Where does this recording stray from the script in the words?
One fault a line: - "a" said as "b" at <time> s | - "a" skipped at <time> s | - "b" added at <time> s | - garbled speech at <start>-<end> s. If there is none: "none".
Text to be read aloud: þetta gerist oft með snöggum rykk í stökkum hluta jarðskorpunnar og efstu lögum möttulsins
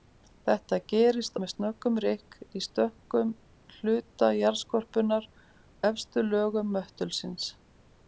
- "oft" skipped at 1.4 s
- "og" skipped at 5.3 s